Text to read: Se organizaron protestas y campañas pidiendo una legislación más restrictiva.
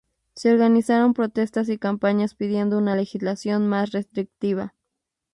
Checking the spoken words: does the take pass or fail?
pass